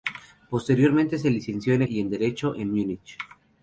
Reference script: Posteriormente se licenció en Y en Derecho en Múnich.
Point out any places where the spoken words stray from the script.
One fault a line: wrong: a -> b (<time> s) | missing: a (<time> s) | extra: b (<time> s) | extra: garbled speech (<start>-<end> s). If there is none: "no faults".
no faults